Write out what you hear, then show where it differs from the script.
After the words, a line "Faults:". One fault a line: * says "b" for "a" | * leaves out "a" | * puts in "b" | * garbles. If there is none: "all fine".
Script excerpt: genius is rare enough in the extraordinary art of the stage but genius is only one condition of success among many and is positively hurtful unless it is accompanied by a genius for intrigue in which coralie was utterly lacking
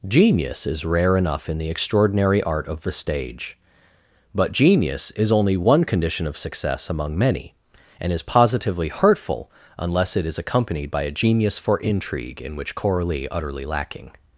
genius is rare enough in the extraordinary art of the stage but genius is only one condition of success among many and is positively hurtful unless it is accompanied by a genius for intrigue in which coralie utterly lacking
Faults:
* leaves out "was"